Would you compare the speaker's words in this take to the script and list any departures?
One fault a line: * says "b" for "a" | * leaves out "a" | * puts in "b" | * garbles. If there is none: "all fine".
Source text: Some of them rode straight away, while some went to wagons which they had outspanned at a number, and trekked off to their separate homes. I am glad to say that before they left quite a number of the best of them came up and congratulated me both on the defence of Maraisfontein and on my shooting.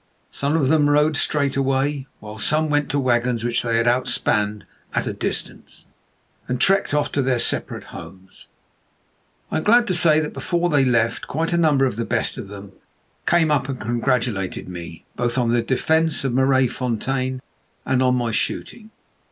* says "distance" for "number"